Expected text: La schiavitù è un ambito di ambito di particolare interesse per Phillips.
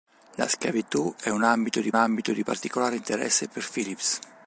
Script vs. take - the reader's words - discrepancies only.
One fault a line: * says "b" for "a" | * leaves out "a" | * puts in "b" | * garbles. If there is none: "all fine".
all fine